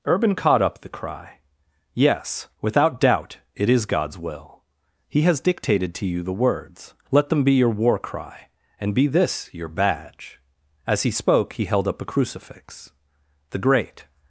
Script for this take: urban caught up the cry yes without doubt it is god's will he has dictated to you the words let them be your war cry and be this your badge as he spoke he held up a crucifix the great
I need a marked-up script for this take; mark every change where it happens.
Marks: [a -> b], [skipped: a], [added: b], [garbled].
urban caught up the cry yes without doubt it is god's will he has dictated to you the words let them be your war cry and be this your badge as he spoke he held up a crucifix the great